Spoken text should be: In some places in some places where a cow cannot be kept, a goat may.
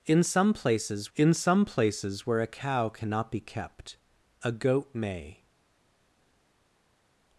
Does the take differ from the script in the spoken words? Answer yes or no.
no